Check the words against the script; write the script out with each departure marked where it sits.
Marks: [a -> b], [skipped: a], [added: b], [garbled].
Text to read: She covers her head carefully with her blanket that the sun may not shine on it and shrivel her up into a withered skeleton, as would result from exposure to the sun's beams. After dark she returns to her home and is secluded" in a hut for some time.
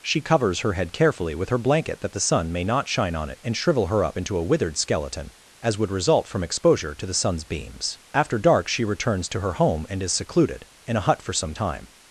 She covers her head carefully with her blanket that the sun may not shine on it and shrivel her up into a withered skeleton, as would result from exposure to the sun's beams. After dark she returns to her home and is secluded" in a hut for some time.